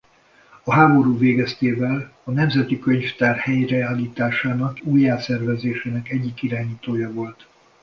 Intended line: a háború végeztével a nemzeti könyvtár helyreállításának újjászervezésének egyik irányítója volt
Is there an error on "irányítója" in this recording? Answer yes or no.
no